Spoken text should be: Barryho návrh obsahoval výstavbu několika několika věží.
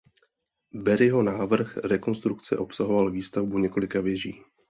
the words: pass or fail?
fail